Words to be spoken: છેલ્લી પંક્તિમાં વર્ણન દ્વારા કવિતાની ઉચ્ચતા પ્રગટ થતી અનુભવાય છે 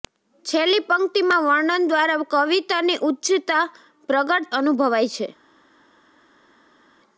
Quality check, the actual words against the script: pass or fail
fail